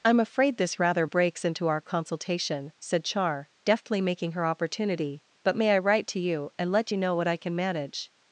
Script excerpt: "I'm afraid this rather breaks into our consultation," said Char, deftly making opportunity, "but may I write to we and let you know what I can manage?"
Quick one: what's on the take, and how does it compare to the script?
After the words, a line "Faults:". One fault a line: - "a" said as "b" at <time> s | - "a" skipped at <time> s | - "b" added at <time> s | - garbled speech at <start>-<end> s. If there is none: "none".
"I'm afraid this rather breaks into our consultation," said Char, deftly making her opportunity, "but may I write to you and let you know what I can manage?"
Faults:
- "her" added at 4.3 s
- "we" said as "you" at 6.2 s